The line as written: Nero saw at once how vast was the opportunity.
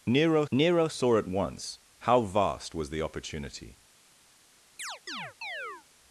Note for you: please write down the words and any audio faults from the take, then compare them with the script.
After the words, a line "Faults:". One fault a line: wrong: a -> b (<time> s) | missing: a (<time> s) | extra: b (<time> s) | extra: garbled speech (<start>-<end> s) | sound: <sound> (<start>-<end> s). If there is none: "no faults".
Nero nero saw at once how vast was the opportunity.
Faults:
extra: nero (0.5 s)
sound: chirp (4.8-5.9 s)